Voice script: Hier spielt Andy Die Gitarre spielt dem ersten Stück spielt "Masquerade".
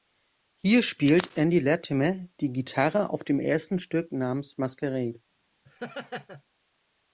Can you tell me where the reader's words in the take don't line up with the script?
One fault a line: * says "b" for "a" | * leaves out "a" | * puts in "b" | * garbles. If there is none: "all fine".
* puts in "Latimer"
* says "auf" for "spielt"
* says "namens" for "spielt"